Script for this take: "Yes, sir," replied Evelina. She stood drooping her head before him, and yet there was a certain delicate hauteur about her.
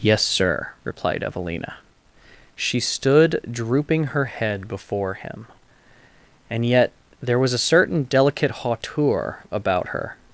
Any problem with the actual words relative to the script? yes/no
no